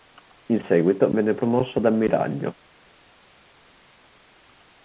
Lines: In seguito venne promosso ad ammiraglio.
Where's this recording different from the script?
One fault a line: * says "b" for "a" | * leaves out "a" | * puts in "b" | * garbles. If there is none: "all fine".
all fine